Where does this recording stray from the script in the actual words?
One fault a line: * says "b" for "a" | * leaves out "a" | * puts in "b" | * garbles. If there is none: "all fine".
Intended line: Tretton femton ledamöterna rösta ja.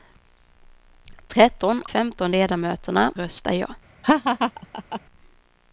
all fine